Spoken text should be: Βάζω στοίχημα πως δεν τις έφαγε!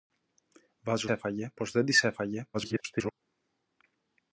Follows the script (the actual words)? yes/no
no